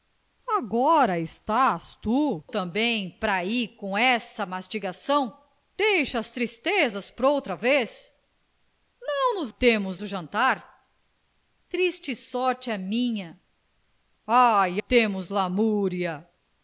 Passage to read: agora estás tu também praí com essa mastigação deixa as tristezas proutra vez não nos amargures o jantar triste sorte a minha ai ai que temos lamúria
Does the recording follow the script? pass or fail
fail